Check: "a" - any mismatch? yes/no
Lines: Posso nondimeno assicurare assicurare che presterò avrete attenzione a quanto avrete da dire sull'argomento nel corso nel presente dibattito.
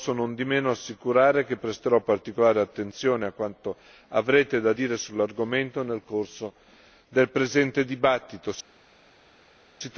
no